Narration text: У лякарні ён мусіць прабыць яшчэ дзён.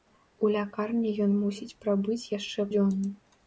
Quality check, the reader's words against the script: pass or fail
pass